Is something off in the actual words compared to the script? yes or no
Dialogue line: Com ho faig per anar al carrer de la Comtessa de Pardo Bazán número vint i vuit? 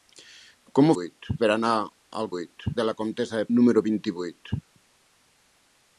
yes